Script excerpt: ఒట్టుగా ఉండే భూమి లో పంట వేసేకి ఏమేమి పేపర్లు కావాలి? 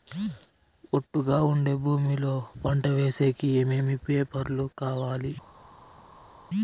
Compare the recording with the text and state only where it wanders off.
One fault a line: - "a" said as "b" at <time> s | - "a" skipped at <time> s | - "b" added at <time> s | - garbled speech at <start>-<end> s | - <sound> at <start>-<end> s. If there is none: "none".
none